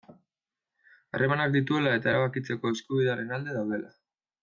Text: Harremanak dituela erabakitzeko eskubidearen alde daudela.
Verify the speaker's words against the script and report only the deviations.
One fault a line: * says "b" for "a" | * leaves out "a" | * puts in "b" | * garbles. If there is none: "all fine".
* puts in "eta"